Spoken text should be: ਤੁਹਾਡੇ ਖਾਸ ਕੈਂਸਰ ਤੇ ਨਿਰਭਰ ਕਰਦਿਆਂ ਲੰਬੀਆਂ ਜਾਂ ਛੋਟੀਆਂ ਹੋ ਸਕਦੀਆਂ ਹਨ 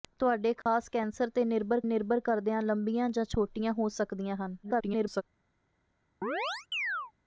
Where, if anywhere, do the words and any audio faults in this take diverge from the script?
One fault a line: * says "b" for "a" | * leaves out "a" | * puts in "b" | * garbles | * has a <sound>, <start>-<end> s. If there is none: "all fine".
* has a dropout, 0.6-0.7 s
* puts in "ਨਿਰਭਰ"
* garbles
* has a chirp, 6.2-7.1 s